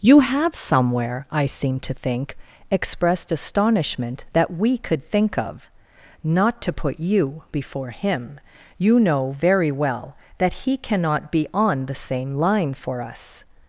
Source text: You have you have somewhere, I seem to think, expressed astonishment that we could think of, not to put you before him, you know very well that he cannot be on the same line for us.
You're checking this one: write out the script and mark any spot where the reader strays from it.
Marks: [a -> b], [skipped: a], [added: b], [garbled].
You have [skipped: you have] somewhere, I seem to think, expressed astonishment that we could think of, not to put you before him, you know very well that he cannot be on the same line for us.